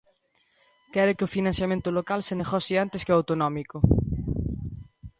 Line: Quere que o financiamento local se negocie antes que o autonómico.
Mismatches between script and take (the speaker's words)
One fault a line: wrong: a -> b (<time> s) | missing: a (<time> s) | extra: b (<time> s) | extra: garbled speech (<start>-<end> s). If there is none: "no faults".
no faults